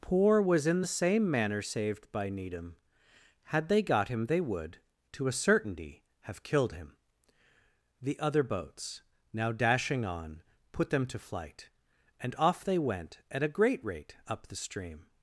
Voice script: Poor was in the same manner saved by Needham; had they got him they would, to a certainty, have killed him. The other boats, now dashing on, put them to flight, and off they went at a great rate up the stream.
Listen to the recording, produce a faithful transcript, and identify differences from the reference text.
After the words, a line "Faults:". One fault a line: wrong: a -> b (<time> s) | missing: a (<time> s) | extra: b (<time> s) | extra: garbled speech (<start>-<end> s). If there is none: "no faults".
Poor was in the same manner saved by Needham; had they got him they would, to a certainty, have killed him. The other boats, now dashing on, put them to flight, and off they went at a great rate up the stream.
Faults:
no faults